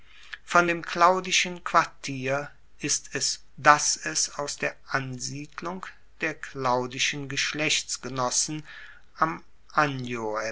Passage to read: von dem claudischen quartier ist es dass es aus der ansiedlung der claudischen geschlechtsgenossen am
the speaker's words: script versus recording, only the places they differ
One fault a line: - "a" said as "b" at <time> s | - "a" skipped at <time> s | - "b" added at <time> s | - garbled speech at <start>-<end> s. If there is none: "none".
none